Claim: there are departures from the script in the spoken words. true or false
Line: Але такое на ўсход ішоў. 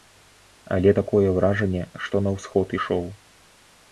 true